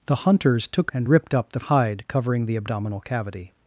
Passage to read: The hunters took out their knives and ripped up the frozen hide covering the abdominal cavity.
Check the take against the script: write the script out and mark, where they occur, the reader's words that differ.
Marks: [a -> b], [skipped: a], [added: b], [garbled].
The hunters took [skipped: out their knives] and ripped up the [skipped: frozen] hide covering the abdominal cavity.